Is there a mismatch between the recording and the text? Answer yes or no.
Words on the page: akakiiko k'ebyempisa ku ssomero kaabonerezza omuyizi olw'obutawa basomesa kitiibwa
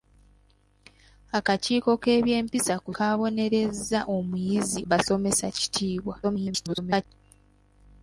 yes